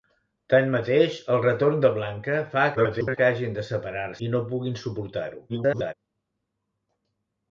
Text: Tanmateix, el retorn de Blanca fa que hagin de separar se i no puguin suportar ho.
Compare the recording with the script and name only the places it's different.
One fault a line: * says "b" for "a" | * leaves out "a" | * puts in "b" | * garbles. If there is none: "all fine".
* garbles
* leaves out "se"
* garbles